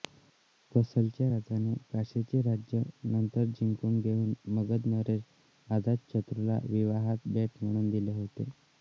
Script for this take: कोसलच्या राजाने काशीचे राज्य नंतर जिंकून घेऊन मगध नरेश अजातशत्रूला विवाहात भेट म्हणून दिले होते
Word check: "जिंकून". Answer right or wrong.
right